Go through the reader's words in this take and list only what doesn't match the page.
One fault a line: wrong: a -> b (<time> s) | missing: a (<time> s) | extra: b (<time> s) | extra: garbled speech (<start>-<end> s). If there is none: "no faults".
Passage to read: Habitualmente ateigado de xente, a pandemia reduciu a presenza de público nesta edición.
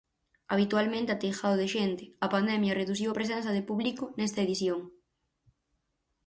no faults